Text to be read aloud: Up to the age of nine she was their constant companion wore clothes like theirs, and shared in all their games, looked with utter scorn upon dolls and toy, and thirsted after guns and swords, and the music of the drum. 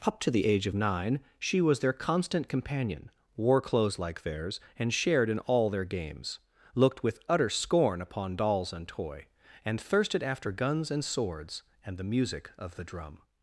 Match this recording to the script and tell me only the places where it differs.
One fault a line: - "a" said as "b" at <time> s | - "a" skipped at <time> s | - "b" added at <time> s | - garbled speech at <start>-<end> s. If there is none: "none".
none